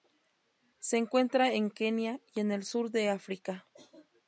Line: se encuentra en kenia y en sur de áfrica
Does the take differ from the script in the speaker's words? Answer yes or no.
yes